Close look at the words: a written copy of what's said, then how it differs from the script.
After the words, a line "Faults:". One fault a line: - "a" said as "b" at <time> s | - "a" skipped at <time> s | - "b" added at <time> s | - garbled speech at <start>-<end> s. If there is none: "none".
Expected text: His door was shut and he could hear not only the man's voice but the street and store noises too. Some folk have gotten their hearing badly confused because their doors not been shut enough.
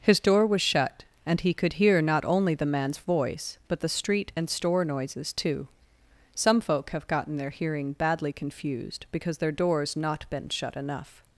His door was shut and he could hear not only the man's voice but the street and store noises too. Some folk have gotten their hearing badly confused because their doors not been shut enough.
Faults:
none